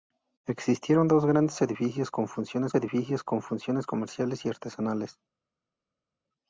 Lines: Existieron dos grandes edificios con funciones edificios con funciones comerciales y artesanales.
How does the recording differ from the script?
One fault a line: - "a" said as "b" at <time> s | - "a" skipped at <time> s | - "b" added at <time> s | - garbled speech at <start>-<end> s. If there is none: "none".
none